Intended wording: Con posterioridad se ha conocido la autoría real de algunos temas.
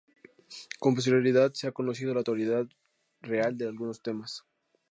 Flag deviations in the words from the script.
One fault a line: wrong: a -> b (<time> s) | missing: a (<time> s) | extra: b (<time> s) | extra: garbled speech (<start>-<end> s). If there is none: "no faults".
no faults